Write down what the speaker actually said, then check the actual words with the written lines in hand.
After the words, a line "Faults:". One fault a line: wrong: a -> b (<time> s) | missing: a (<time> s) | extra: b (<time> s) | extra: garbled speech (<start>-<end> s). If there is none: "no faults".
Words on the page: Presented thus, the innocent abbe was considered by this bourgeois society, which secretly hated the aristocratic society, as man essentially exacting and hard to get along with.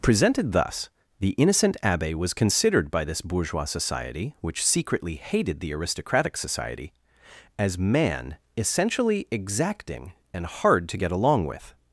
Presented thus, the innocent abbe was considered by this bourgeois society, which secretly hated the aristocratic society, as man essentially exacting and hard to get along with.
Faults:
no faults